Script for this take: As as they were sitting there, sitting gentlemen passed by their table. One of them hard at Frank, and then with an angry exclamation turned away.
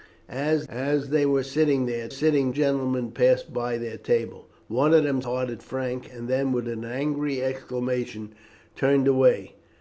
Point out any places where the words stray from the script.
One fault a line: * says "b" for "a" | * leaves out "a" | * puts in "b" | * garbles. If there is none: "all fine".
all fine